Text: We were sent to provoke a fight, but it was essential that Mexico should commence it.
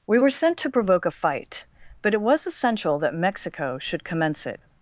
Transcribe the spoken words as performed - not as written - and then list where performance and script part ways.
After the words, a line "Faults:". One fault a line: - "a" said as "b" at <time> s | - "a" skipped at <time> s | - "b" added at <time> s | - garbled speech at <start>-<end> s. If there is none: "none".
We were sent to provoke a fight, but it was essential that Mexico should commence it.
Faults:
none